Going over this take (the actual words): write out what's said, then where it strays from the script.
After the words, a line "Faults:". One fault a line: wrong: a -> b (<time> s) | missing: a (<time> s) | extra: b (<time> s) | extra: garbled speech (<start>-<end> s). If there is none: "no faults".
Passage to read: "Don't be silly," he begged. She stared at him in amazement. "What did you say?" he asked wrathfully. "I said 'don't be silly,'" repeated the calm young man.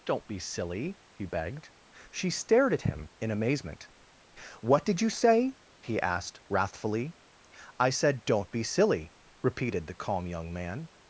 "Don't be silly," he begged. She stared at him in amazement. "What did you say?" he asked wrathfully. "I said 'don't be silly,'" repeated the calm young man.
Faults:
no faults